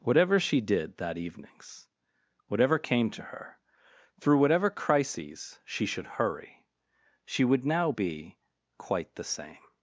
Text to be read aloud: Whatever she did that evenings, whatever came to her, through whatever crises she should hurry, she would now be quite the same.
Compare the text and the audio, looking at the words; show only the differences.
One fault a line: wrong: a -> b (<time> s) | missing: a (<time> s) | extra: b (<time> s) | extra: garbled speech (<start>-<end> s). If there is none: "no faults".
no faults